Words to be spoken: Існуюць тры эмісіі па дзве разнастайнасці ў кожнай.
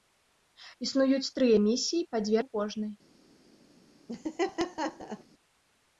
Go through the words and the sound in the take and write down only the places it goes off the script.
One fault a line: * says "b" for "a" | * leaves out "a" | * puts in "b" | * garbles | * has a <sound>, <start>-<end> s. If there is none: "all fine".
* leaves out "разнастайнасці"
* has a laugh, 4.1-5.2 s